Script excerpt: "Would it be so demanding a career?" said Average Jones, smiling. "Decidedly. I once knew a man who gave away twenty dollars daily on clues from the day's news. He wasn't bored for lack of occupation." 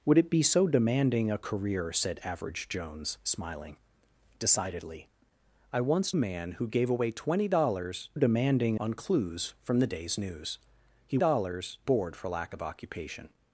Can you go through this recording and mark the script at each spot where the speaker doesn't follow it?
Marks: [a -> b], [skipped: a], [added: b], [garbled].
"Would it be so demanding a career?" said Average Jones, smiling. "Decidedly. I once [skipped: knew] a man who gave away twenty dollars [daily -> demanding] on clues from the day's news. He [wasn't -> dollars] bored for lack of occupation."